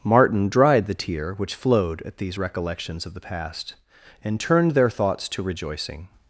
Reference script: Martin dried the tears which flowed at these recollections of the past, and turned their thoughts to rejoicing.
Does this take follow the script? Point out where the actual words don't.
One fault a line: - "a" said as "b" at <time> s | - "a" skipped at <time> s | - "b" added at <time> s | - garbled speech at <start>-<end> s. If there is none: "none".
- "tears" said as "tear" at 0.9 s